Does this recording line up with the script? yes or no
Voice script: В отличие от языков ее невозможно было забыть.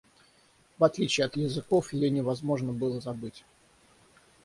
yes